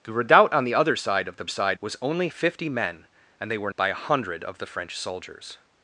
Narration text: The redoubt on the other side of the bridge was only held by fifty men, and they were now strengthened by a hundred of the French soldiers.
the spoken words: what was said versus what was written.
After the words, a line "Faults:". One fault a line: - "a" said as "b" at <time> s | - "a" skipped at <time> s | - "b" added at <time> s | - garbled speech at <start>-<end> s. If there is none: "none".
The redoubt on the other side of the side was only fifty men, and they were by a hundred of the French soldiers.
Faults:
- "bridge" said as "side" at 1.5 s
- "held by" skipped at 2.3 s
- "now strengthened" skipped at 3.7 s